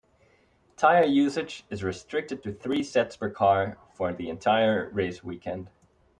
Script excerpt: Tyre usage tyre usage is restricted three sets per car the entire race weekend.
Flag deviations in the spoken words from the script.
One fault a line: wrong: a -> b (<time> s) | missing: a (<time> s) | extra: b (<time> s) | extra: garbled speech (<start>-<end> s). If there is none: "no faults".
missing: tyre usage (1.6 s)
extra: to (2.4 s)
extra: for (3.9 s)